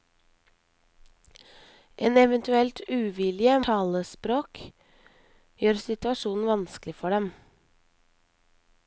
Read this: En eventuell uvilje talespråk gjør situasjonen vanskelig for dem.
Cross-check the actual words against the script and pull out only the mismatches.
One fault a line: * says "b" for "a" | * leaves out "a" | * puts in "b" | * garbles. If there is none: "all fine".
all fine